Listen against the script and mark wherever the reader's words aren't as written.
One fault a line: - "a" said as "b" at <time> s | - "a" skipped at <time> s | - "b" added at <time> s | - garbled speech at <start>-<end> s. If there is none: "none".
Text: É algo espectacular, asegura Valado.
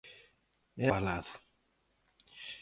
- "algo espectacular asegura" skipped at 0.9 s